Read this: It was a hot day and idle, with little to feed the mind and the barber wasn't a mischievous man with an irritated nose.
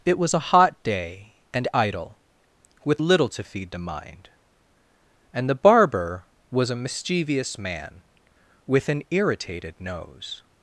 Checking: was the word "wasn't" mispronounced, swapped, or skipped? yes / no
yes